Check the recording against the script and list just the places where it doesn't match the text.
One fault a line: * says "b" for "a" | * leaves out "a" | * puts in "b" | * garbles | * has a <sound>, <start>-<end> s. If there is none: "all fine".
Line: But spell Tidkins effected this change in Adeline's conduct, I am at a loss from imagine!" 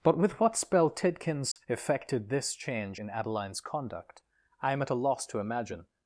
* puts in "with what"
* has a dropout, 1.5-1.6 s
* says "to" for "from"